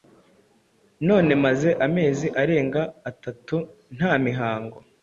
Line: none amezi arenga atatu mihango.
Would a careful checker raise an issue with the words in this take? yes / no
yes